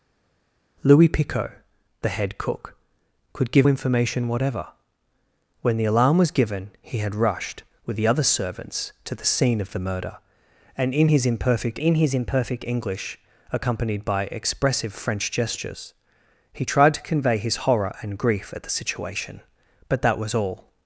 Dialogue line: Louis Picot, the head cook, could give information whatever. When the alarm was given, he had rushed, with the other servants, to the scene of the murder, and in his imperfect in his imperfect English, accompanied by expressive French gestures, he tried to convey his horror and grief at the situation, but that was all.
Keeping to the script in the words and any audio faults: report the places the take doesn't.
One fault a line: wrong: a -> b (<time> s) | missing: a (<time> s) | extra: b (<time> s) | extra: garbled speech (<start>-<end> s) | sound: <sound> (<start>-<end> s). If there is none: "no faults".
no faults